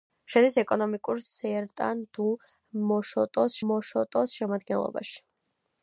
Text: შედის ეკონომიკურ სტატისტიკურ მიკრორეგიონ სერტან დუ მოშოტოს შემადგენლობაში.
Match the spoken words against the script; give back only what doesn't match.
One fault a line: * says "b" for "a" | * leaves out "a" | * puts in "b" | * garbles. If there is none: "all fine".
* leaves out "სტატისტიკურ მიკრორეგიონ"
* puts in "მოშოტოს"